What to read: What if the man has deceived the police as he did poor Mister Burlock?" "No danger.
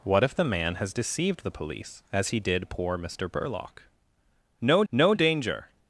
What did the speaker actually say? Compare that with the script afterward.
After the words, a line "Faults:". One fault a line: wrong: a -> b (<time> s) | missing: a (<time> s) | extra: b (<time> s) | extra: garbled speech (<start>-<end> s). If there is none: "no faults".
What if the man has deceived the police as he did poor Mister Burlock?" "No no danger.
Faults:
extra: no (4.9 s)